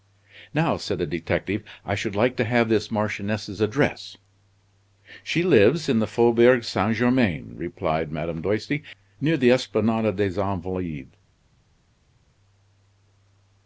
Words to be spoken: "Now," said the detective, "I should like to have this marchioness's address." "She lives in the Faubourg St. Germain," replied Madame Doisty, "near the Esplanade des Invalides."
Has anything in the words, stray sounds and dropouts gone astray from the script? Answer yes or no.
no